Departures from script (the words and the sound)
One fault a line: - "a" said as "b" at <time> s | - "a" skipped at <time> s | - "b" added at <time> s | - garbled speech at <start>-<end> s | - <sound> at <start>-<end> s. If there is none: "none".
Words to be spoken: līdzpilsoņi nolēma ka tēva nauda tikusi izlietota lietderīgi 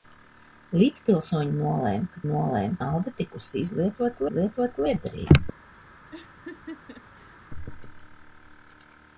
- "tēva" said as "nolēma" at 2.3 s
- "izlietota" added at 4.3 s
- laugh at 6.1-7.4 s